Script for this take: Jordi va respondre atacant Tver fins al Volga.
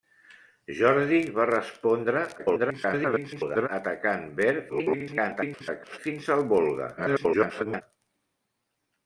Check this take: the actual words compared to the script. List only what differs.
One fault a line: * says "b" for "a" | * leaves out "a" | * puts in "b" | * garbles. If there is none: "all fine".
* garbles
* garbles
* garbles